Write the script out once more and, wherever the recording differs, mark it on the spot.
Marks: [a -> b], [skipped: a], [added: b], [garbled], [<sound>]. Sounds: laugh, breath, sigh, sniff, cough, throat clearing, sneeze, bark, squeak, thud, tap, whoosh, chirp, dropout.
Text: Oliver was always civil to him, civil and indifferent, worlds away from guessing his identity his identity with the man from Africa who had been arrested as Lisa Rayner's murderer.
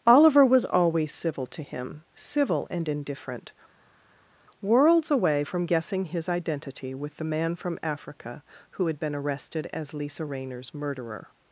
Oliver was always civil to him, civil and indifferent, worlds away from guessing his identity [skipped: his identity] with the man from Africa who had been arrested as Lisa Rayner's murderer.